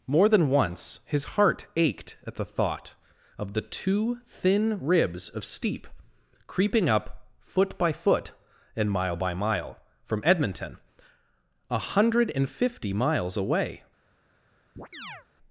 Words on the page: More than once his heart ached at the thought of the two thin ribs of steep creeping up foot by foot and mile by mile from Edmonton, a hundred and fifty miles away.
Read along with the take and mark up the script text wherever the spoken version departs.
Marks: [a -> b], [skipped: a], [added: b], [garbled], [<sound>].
More than once his heart ached at the thought of the two thin ribs of steep creeping up foot by foot and mile by mile from Edmonton, a hundred and fifty miles away. [chirp]